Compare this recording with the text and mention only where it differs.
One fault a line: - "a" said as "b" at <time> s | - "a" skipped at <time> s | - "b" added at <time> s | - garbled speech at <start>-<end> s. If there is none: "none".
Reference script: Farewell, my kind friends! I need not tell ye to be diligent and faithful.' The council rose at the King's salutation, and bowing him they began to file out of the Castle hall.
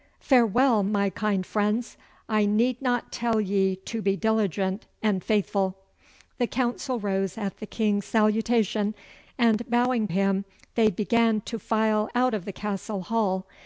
none